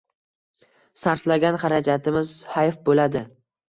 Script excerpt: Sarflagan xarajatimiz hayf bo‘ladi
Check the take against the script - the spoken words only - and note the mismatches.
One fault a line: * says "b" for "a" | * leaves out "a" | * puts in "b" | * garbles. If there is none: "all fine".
all fine